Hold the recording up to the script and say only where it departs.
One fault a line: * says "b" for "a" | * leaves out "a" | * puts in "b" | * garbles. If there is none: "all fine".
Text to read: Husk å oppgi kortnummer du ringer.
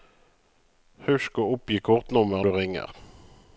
all fine